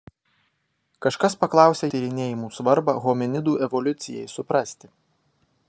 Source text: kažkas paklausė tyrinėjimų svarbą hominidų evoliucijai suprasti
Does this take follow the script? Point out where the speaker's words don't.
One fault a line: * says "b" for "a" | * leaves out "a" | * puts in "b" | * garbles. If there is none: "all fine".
all fine